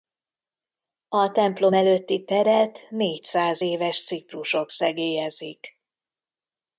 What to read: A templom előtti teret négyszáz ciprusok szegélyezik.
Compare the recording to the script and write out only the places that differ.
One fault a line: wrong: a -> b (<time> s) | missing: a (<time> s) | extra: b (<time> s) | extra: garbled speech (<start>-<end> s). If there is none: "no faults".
extra: éves (3.6 s)